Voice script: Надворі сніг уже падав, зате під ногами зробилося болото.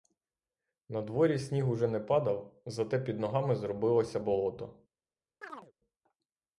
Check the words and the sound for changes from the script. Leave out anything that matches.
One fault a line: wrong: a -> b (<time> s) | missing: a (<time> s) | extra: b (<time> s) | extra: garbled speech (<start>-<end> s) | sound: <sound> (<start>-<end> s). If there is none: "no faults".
extra: не (1.9 s)
sound: chirp (5.4-5.7 s)